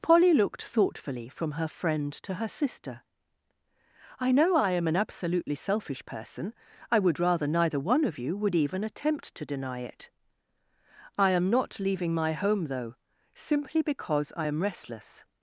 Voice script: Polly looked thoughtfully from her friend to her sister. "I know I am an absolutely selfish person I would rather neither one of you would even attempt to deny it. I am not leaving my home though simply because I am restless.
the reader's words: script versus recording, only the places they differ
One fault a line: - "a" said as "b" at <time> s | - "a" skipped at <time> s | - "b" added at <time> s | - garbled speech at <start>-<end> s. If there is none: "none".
none